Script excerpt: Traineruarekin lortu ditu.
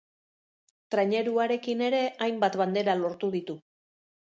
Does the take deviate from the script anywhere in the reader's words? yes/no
yes